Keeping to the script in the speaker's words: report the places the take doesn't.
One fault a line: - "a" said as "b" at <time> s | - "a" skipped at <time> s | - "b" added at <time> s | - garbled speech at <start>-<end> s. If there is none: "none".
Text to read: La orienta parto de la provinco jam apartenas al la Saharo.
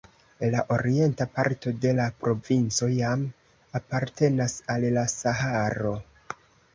none